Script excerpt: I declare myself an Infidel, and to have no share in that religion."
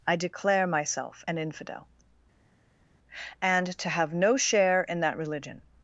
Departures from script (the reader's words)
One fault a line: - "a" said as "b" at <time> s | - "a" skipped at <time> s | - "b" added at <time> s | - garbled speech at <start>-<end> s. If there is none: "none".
none